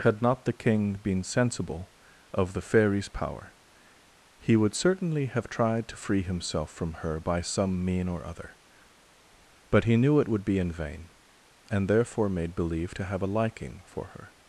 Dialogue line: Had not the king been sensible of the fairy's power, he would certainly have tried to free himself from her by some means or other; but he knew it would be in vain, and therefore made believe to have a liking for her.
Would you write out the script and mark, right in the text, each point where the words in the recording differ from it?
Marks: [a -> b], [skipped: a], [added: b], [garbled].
Had not the king been sensible of the fairy's power, he would certainly have tried to free himself from her by some [means -> mean] or other; but he knew it would be in vain, and therefore made believe to have a liking for her.